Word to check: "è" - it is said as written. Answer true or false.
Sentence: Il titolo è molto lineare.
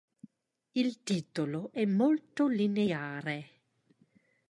true